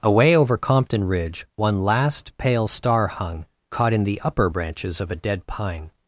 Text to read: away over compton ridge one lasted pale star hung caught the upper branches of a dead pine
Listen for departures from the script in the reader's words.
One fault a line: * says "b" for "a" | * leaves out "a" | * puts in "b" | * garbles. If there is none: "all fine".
* says "last" for "lasted"
* puts in "in"